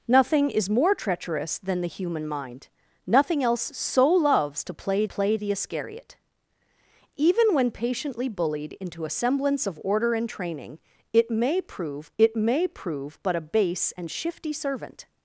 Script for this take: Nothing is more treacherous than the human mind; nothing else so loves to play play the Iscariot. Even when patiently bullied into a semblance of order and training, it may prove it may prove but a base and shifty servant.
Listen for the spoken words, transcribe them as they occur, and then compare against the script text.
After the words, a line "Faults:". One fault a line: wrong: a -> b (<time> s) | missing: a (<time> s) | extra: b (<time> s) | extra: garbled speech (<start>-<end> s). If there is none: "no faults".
Nothing is more treacherous than the human mind; nothing else so loves to play play the Iscariot. Even when patiently bullied into a semblance of order and training, it may prove it may prove but a base and shifty servant.
Faults:
no faults